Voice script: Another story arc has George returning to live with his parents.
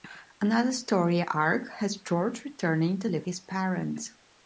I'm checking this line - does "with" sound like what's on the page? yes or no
no